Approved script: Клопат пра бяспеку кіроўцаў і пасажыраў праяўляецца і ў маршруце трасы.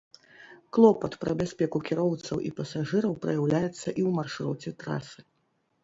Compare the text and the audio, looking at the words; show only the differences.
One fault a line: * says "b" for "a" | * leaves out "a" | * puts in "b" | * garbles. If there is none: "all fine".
all fine